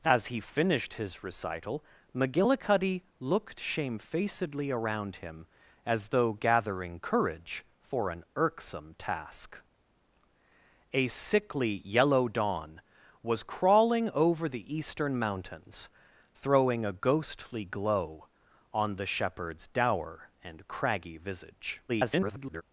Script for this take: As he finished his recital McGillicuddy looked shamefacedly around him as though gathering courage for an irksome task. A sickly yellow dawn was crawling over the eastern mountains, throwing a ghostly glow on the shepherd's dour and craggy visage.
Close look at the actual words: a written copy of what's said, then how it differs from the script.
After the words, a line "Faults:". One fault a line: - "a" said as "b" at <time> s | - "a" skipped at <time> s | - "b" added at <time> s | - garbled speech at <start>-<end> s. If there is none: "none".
As he finished his recital McGillicuddy looked shamefacedly around him as though gathering courage for an irksome task. A sickly yellow dawn was crawling over the eastern mountains, throwing a ghostly glow on the shepherd's dour and craggy visage. [garbled]
Faults:
- garbled speech at 21.9-22.6 s